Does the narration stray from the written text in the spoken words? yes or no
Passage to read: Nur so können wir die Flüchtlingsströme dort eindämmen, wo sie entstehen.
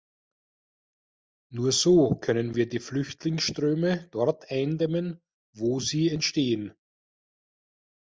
no